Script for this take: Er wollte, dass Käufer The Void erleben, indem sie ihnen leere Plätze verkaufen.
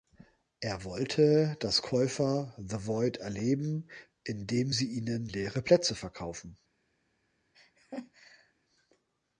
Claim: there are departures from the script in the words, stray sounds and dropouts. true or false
true